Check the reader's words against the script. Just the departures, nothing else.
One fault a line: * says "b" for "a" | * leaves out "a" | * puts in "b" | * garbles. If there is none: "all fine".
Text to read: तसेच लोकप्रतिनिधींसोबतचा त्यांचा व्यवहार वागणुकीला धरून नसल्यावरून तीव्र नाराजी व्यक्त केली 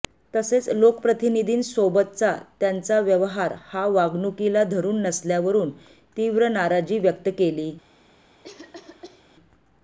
* puts in "हा"